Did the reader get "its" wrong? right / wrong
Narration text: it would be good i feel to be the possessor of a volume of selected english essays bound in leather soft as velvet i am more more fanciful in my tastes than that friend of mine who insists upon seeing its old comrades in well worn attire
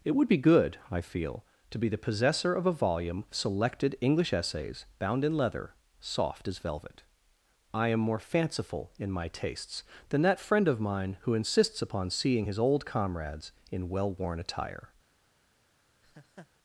wrong